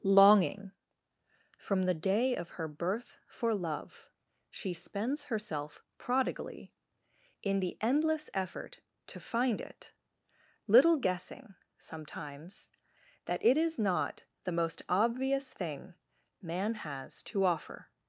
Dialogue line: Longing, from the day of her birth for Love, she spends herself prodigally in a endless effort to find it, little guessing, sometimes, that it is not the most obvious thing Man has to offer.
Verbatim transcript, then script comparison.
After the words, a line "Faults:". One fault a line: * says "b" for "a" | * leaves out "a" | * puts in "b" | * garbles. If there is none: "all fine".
Longing, from the day of her birth for Love, she spends herself prodigally in the endless effort to find it, little guessing, sometimes, that it is not the most obvious thing Man has to offer.
Faults:
* says "the" for "a"